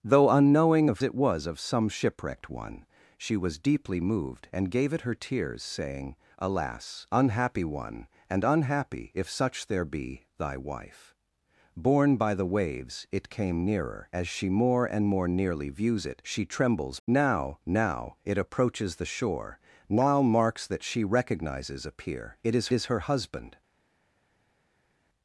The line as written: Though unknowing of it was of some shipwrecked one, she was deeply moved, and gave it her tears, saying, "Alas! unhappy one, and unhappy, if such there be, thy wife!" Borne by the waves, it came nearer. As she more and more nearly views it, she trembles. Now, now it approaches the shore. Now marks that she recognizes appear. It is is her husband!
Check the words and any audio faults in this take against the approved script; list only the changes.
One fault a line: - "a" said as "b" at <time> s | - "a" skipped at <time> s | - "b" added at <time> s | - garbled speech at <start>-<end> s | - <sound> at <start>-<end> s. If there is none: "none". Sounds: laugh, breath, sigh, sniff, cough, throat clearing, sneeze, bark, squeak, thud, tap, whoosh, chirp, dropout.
none